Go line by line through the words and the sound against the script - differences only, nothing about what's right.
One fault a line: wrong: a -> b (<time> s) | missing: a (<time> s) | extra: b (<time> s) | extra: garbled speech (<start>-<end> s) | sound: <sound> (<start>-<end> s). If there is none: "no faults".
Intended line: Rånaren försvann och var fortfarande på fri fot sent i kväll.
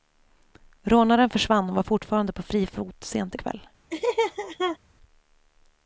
sound: laugh (3.9-4.8 s)